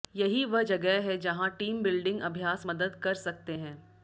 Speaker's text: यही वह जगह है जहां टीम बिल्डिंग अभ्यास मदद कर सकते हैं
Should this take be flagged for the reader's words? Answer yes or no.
no